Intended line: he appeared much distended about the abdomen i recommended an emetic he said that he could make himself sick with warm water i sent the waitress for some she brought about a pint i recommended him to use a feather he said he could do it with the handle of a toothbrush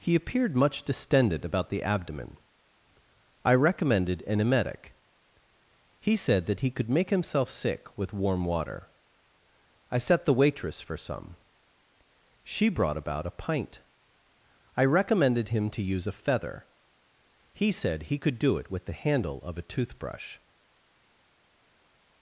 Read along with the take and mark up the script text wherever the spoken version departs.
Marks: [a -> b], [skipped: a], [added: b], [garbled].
he appeared much distended about the abdomen i recommended an emetic he said that he could make himself sick with warm water i [sent -> set] the waitress for some she brought about a pint i recommended him to use a feather he said he could do it with the handle of a toothbrush